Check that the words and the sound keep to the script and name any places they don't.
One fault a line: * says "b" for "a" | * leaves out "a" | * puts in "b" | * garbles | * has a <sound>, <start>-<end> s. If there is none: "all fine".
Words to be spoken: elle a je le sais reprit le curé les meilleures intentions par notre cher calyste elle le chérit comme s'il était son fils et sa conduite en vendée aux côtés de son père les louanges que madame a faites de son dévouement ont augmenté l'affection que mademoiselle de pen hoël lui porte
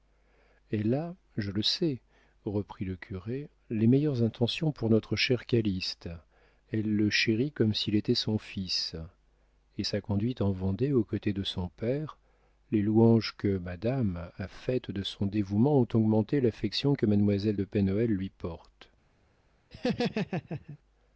* says "pour" for "par"
* has a laugh, 19.7-20.8 s